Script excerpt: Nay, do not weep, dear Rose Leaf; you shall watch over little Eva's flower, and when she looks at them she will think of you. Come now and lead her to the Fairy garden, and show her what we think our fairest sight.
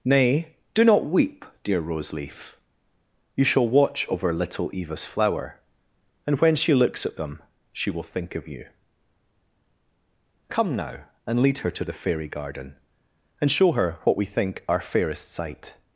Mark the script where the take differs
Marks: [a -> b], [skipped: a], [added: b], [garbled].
Nay, do not weep, dear Rose Leaf; you shall watch over little Eva's flower, and when she looks at them she will think of you. Come now and lead her to the Fairy garden, and show her what we think our fairest sight.